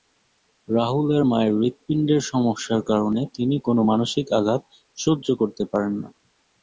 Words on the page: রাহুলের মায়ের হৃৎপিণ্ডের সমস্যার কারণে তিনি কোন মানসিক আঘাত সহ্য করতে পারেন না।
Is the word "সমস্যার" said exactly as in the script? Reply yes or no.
yes